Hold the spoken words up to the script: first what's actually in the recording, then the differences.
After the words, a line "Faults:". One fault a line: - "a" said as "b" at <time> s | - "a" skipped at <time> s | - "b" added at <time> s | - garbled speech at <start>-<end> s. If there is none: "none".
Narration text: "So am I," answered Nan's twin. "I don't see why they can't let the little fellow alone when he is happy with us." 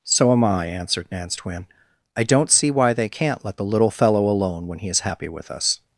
"So am I," answered Nan's twin. "I don't see why they can't let the little fellow alone when he is happy with us."
Faults:
none